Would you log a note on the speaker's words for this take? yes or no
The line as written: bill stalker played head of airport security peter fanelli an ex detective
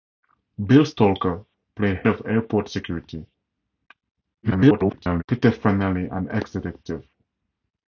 yes